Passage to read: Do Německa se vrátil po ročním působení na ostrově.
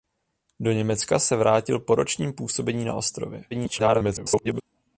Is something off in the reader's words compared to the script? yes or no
yes